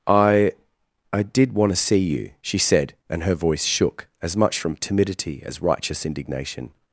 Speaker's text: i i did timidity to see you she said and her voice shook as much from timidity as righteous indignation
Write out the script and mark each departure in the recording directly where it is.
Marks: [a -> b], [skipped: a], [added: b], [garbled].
i i did [timidity -> want] to see you she said and her voice shook as much from timidity as righteous indignation